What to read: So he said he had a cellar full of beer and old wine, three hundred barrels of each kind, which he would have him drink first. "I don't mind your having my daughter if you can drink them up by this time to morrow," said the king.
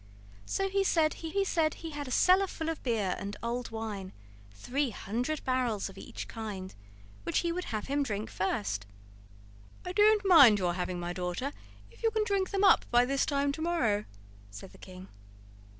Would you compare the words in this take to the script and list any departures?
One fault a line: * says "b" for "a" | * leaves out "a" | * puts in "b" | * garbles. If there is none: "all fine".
* puts in "he said he"